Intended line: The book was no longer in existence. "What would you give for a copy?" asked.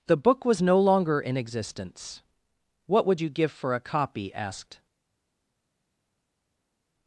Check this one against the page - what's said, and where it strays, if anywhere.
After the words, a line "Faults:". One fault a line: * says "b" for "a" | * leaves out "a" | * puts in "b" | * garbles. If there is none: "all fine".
The book was no longer in existence. "What would you give for a copy?" asked.
Faults:
all fine